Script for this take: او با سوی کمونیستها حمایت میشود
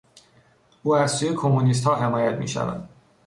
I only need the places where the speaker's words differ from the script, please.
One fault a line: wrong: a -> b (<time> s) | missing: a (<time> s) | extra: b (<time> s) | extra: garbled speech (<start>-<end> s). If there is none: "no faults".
wrong: با -> از (0.9 s)